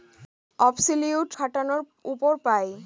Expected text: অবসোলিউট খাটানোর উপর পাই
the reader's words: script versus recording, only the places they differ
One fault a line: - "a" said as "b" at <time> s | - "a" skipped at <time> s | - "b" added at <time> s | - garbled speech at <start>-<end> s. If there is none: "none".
none